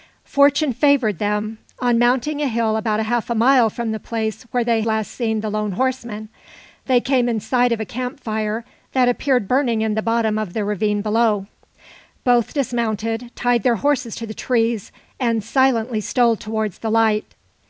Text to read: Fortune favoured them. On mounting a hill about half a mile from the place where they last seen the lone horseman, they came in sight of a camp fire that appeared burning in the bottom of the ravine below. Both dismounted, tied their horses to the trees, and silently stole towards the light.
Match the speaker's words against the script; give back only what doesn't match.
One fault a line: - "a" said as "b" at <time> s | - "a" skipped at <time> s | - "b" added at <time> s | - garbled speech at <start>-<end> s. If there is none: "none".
none